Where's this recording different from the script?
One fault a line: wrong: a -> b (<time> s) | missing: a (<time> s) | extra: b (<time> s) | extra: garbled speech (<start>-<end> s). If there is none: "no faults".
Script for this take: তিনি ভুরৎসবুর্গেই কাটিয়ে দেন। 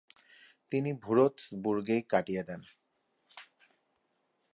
no faults